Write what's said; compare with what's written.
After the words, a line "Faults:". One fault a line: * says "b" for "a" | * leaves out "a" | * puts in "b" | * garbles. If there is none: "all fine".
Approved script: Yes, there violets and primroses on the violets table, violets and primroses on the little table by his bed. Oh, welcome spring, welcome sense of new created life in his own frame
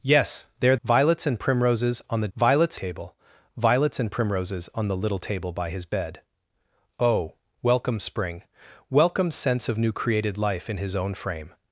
Yes, there violets and primroses on the violets table, violets and primroses on the little table by his bed. Oh, welcome spring, welcome sense of new created life in his own frame
Faults:
all fine